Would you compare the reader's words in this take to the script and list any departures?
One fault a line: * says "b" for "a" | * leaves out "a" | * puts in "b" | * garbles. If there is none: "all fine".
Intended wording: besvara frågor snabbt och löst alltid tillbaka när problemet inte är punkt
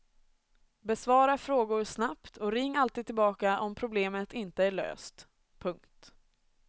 * says "ring" for "löst"
* says "om" for "när"
* puts in "löst"